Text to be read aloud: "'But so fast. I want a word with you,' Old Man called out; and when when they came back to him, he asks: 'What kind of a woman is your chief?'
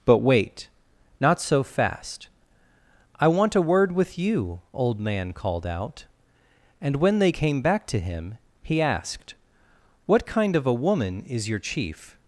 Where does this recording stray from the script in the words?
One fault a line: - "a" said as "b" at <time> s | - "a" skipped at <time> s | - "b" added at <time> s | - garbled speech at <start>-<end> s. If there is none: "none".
- "wait Not" added at 0.2 s
- "when" skipped at 7.2 s
- "asks" said as "asked" at 8.8 s